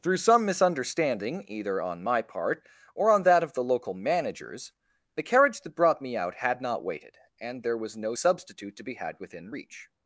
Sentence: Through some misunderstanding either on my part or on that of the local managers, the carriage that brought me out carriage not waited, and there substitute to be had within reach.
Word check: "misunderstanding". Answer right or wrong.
right